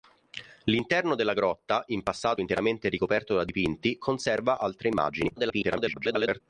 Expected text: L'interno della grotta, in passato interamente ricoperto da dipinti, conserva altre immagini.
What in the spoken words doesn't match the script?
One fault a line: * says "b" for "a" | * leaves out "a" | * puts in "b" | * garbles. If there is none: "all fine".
* garbles